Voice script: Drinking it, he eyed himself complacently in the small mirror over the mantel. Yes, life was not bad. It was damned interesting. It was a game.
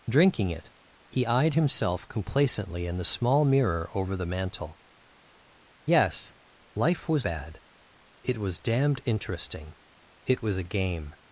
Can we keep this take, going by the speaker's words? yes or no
no